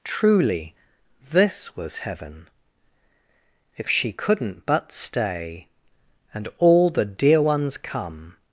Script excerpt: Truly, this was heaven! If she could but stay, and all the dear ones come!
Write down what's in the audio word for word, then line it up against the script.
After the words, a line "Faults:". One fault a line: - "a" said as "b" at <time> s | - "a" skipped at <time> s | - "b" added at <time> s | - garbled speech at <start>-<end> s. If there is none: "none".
Truly, this was heaven! If she couldn't but stay, and all the dear ones come!
Faults:
- "could" said as "couldn't" at 4.1 s